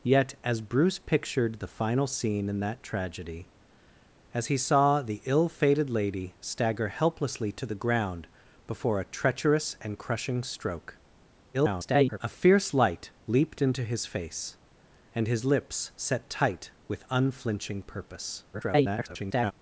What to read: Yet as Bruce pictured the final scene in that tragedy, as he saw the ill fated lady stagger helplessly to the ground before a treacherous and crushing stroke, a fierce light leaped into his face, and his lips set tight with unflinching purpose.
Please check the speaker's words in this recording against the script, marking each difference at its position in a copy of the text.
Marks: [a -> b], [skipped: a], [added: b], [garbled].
Yet as Bruce pictured the final scene in that tragedy, as he saw the ill fated lady stagger helplessly to the ground before a treacherous and crushing stroke, [garbled] a fierce light leaped into his face, and his lips set tight with unflinching purpose. [garbled]